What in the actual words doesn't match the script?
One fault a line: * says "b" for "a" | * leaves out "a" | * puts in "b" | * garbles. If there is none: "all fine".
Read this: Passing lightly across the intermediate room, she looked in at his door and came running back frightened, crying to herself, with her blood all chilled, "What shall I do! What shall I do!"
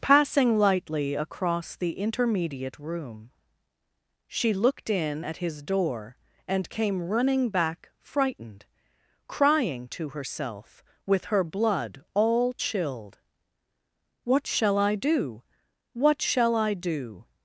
all fine